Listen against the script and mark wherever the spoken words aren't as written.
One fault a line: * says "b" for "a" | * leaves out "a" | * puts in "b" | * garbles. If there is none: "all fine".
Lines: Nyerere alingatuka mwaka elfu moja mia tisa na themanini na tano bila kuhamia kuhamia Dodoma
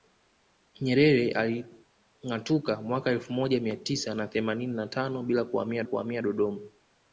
all fine